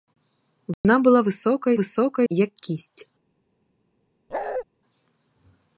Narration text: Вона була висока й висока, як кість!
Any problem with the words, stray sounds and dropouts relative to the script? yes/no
yes